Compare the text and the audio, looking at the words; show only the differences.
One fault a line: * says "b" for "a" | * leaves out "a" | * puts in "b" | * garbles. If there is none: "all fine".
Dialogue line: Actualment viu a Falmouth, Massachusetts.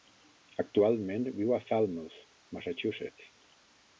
all fine